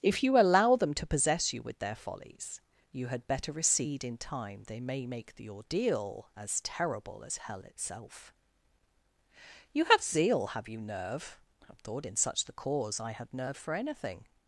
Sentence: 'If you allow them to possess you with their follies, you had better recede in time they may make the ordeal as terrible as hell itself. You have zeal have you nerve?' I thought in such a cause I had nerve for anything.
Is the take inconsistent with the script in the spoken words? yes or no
yes